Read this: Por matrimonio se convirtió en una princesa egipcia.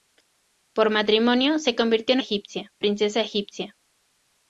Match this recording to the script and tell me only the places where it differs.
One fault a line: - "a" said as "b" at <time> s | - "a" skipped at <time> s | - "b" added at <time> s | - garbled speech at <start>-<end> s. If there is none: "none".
- "una" said as "egipcia" at 2.2 s